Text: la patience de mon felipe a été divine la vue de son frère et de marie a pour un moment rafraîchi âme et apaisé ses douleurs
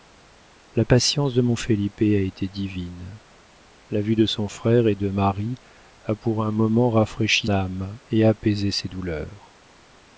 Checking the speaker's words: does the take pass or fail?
pass